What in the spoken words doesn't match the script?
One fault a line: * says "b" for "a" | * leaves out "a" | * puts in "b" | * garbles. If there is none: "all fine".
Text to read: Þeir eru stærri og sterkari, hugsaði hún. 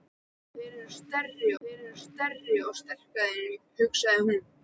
* puts in "þeir eru stærri"